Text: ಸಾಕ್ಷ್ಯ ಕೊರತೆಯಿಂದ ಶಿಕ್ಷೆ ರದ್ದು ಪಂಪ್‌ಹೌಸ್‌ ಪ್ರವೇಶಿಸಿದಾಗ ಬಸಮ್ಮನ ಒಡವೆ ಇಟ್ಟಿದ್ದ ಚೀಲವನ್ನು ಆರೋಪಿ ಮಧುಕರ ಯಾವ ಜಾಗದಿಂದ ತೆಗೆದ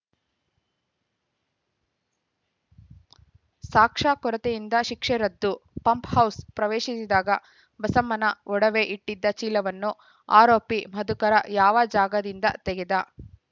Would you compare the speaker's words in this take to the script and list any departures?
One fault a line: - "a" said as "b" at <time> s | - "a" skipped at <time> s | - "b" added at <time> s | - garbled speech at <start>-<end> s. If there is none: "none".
none